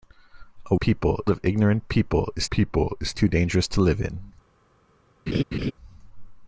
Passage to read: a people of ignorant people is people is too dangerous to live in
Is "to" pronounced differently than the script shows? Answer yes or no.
no